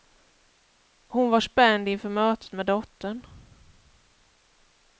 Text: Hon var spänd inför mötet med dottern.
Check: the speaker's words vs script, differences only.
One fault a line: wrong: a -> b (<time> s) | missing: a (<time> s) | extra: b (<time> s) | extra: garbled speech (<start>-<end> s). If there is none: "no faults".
no faults